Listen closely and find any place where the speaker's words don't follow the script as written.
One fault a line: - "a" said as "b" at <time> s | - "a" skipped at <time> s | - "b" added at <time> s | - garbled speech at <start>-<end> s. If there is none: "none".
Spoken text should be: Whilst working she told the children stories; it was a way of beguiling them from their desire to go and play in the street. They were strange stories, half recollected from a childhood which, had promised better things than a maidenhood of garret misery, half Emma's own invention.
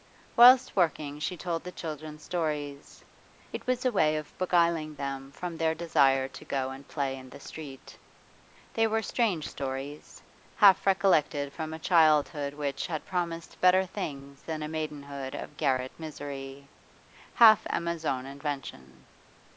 none